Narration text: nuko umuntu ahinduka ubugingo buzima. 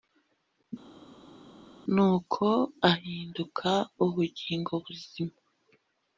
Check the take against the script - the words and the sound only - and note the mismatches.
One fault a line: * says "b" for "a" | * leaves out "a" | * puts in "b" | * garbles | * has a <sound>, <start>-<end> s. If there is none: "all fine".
* leaves out "umuntu"